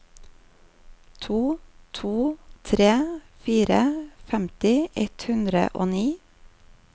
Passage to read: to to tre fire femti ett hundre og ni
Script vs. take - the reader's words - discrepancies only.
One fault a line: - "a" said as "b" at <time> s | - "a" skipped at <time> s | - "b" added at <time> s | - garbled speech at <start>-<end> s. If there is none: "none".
none